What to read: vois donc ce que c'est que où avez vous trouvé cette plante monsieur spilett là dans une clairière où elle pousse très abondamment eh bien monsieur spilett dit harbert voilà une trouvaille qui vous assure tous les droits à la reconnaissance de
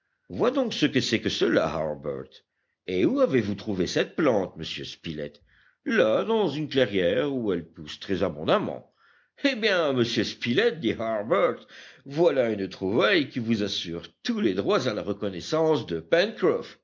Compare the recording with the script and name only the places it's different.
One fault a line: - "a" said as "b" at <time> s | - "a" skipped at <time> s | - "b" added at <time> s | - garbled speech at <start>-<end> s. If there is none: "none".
- "cela harbert et" added at 1.3 s